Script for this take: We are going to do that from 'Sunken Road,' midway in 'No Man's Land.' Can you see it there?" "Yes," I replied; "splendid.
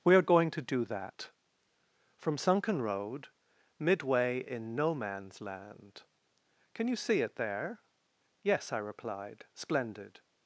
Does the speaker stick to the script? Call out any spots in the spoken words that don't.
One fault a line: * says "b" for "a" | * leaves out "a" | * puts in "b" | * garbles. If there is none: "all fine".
all fine